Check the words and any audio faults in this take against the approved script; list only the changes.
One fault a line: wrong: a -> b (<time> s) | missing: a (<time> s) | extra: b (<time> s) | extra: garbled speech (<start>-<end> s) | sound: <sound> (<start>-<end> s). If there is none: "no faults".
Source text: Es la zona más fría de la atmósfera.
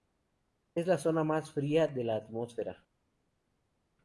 no faults